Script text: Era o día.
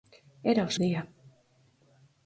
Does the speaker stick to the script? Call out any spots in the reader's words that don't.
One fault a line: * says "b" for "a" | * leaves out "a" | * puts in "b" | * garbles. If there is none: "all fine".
all fine